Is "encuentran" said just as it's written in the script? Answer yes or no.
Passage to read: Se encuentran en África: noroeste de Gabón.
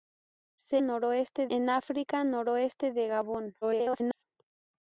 no